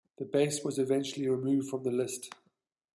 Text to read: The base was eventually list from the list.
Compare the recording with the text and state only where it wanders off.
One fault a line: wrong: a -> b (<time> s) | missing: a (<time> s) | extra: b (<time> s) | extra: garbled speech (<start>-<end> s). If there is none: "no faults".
wrong: list -> removed (1.3 s)